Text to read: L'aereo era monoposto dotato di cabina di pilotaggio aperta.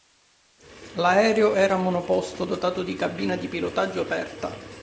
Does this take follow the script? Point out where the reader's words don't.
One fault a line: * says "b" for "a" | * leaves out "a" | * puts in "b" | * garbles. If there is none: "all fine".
all fine